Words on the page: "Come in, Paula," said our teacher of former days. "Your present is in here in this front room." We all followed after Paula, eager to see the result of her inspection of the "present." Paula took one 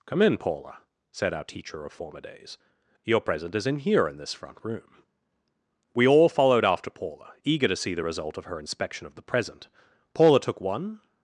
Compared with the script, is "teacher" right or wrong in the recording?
right